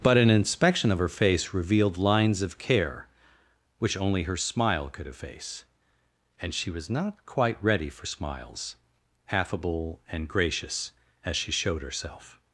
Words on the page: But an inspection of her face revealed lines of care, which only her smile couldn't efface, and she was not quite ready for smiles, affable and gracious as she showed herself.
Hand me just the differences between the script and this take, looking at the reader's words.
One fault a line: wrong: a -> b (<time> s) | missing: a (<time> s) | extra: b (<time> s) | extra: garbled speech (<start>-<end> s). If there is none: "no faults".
wrong: couldn't -> could (4.9 s)